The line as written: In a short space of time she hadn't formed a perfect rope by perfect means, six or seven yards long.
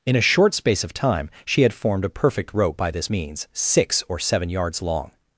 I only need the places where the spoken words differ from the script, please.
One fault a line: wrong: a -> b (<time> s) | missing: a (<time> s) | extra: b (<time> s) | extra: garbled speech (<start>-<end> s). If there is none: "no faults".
wrong: hadn't -> had (1.6 s)
wrong: perfect -> this (2.9 s)